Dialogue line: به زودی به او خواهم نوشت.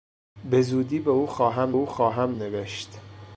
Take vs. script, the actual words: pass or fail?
fail